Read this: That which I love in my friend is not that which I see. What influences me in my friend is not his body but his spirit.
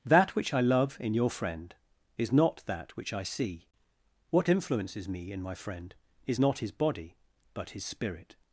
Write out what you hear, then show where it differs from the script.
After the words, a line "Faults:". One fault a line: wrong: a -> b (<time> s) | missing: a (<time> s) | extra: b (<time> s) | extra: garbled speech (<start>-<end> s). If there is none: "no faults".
That which I love in your friend is not that which I see. What influences me in my friend is not his body but his spirit.
Faults:
wrong: my -> your (1.1 s)